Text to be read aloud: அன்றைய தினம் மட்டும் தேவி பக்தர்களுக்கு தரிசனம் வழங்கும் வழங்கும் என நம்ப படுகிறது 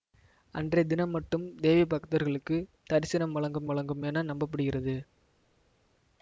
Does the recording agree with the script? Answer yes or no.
yes